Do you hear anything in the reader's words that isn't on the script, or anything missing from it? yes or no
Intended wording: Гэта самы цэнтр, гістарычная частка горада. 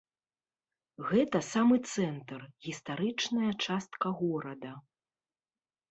no